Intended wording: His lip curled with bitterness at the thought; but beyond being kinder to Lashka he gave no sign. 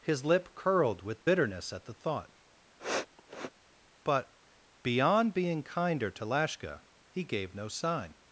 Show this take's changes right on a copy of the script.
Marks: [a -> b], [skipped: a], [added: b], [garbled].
His lip curled with bitterness at the thought; but beyond being kinder to Lashka he gave no sign.